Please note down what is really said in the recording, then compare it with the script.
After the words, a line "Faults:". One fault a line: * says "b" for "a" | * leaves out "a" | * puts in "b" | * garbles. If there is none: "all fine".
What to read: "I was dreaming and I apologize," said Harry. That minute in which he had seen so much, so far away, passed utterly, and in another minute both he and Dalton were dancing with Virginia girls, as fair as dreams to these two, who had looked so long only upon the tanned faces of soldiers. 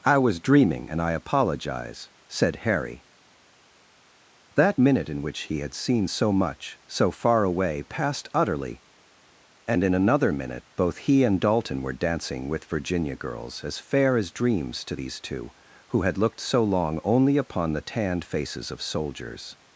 "I was dreaming and I apologize," said Harry. That minute in which he had seen so much, so far away, passed utterly, and in another minute both he and Dalton were dancing with Virginia girls, as fair as dreams to these two, who had looked so long only upon the tanned faces of soldiers.
Faults:
all fine